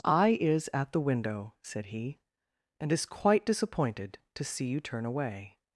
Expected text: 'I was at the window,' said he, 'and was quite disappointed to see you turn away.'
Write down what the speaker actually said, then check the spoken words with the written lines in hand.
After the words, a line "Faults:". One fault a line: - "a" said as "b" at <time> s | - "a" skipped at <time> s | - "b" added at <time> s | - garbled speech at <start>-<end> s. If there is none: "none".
'I is at the window,' said he, 'and is quite disappointed to see you turn away.'
Faults:
- "was" said as "is" at 0.4 s
- "was" said as "is" at 2.9 s